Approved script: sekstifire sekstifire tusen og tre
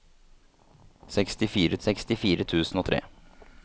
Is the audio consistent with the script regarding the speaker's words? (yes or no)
yes